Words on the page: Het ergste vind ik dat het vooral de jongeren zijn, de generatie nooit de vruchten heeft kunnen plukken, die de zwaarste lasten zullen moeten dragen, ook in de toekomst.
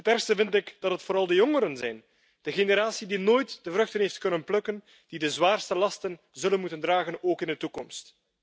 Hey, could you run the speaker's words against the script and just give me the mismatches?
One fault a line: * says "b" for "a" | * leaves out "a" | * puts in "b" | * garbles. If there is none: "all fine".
* puts in "die"